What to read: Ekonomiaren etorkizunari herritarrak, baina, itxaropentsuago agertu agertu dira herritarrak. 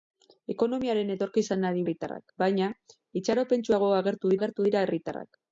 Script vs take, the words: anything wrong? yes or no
no